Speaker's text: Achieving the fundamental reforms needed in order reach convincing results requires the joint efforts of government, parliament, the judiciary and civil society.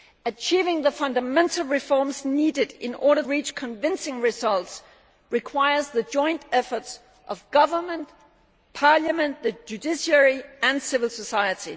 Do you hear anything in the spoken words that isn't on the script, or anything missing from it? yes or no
no